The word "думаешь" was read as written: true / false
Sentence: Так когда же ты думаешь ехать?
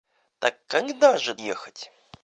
false